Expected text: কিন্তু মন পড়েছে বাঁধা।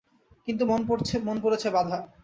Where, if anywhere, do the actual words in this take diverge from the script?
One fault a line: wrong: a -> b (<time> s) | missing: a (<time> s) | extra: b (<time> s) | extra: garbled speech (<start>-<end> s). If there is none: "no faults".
no faults